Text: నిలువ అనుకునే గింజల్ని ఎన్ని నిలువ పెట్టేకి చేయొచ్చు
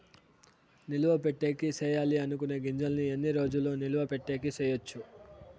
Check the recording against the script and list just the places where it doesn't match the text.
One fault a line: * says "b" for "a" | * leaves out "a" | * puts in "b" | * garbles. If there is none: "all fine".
* puts in "పెట్టేకి సేయాలి"
* puts in "రోజులు"